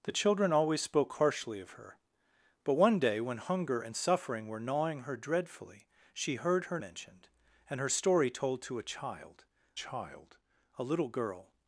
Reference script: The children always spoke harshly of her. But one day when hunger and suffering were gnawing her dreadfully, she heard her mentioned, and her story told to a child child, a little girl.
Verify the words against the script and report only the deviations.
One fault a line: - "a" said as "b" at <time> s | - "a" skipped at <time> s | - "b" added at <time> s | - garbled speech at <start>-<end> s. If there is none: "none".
none